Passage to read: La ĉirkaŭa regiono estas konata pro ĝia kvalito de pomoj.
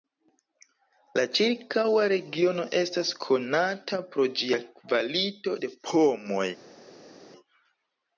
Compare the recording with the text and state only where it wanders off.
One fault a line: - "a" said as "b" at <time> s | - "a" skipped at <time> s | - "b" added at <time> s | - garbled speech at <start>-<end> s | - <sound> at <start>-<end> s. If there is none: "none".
none